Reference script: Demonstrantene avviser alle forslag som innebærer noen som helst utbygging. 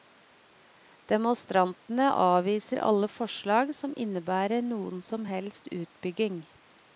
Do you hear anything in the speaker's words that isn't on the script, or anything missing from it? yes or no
no